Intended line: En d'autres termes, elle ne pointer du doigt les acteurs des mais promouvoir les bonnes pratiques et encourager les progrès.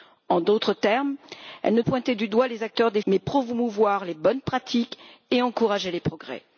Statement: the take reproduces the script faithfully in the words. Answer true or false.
true